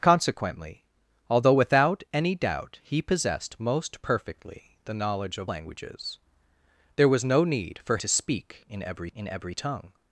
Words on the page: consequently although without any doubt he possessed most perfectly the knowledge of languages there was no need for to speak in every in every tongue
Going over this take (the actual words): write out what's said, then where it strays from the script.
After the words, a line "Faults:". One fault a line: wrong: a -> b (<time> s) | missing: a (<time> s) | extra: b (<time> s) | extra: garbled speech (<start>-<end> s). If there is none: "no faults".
consequently although without any doubt he possessed most perfectly the knowledge of languages there was no need for to speak in every in every tongue
Faults:
no faults